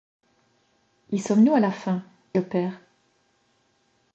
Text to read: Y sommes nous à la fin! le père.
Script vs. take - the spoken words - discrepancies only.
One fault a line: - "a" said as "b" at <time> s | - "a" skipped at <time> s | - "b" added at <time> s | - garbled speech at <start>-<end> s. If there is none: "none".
none